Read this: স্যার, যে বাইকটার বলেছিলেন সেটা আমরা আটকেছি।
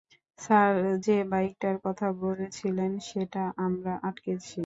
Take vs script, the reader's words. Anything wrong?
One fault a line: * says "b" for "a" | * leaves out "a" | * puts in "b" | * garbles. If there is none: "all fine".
* puts in "কথা"